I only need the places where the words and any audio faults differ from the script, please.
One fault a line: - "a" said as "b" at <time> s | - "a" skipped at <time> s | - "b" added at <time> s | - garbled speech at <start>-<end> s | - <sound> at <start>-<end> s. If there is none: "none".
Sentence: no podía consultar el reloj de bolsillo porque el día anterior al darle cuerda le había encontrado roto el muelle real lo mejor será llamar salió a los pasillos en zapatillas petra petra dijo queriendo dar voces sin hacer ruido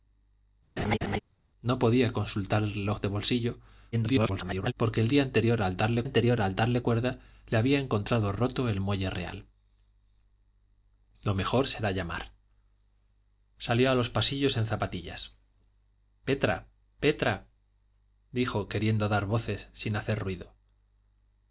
- laugh at 0.8-1.2 s
- garbled speech at 3.9-4.7 s
- "anterior al darle" added at 6.0 s